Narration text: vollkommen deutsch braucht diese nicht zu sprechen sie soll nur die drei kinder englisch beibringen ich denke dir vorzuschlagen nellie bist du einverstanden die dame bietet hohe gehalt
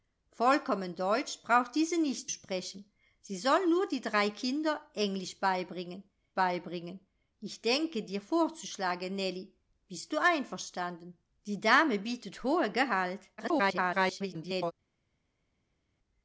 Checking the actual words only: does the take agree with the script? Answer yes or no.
no